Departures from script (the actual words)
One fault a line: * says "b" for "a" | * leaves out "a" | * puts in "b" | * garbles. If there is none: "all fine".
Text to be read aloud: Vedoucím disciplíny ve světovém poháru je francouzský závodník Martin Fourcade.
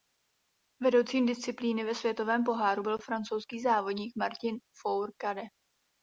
* says "byl" for "je"